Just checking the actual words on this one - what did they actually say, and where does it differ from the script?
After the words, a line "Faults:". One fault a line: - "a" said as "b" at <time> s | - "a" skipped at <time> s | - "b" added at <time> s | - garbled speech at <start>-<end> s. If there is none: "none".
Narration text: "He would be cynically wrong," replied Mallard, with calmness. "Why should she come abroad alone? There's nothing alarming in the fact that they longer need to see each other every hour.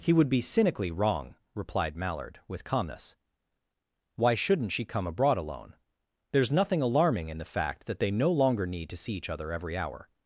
"He would be cynically wrong," replied Mallard, with calmness. "Why shouldn't she come abroad alone? There's nothing alarming in the fact that they no longer need to see each other every hour.
Faults:
- "should" said as "shouldn't" at 4.3 s
- "no" added at 8.1 s